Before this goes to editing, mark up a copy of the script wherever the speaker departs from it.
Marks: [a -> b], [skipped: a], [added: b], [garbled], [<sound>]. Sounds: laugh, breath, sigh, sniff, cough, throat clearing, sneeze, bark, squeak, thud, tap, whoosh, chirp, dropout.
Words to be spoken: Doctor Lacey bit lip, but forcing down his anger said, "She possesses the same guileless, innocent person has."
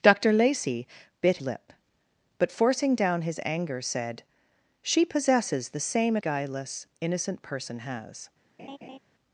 Doctor Lacey bit lip, but forcing down his anger said, "She possesses the same guileless, innocent person has." [laugh]